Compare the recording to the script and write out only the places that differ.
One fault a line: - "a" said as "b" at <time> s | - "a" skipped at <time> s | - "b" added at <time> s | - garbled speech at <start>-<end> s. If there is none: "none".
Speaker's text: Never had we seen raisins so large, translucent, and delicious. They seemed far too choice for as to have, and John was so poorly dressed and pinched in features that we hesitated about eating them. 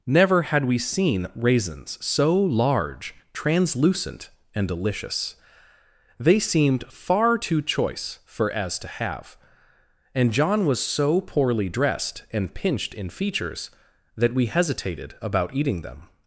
none